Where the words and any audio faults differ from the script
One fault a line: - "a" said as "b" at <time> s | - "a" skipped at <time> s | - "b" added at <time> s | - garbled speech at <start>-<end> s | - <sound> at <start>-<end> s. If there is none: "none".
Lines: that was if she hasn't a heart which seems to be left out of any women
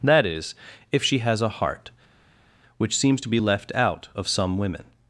- "was" said as "is" at 0.2 s
- "hasn't" said as "has" at 1.2 s
- "any" said as "some" at 4.3 s